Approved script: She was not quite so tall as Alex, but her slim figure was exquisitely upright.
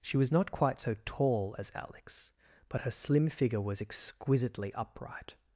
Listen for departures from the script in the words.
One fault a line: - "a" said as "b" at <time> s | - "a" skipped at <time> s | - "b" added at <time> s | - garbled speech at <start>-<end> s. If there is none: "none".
none